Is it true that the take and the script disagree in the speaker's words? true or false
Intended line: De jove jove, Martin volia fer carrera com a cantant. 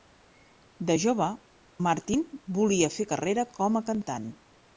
true